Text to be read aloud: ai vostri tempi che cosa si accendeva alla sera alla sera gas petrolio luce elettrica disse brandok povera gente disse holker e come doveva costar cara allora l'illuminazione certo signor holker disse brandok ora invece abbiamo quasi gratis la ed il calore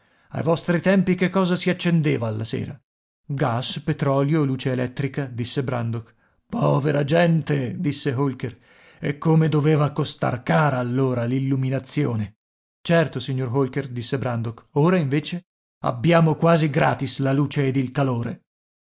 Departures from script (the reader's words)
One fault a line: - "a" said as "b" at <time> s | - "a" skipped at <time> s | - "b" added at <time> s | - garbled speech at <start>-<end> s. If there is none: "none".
- "alla sera" skipped at 2.8 s
- "luce" added at 17.3 s